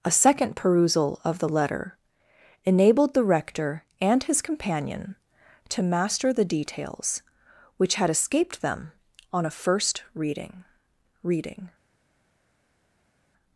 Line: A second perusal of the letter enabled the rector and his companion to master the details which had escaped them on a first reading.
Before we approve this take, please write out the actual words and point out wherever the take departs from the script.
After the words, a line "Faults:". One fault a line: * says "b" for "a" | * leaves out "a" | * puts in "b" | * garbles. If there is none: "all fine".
A second perusal of the letter enabled the rector and his companion to master the details which had escaped them on a first reading reading.
Faults:
* puts in "reading"